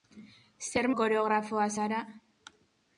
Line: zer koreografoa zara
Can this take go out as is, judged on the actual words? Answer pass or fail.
pass